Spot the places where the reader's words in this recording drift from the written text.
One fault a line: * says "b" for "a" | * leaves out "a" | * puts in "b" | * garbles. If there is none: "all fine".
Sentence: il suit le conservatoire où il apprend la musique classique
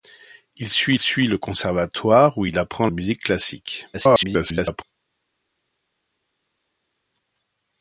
* puts in "suit"
* leaves out "la"
* garbles